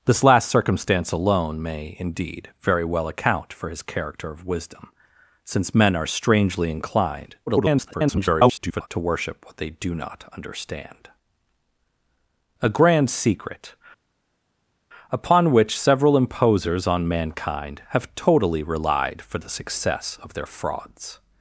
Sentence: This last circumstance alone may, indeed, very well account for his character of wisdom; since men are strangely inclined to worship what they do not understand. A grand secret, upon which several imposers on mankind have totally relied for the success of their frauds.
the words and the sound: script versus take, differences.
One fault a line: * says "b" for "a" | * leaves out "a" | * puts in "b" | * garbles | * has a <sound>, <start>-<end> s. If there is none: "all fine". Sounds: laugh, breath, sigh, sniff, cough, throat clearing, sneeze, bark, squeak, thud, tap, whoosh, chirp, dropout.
* garbles